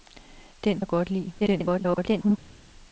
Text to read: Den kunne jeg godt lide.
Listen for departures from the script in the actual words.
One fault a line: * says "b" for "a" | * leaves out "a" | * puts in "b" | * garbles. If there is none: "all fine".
* leaves out "kunne"
* garbles